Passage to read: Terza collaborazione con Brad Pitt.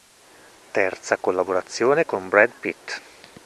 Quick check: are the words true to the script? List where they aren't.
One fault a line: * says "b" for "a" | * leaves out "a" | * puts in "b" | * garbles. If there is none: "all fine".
all fine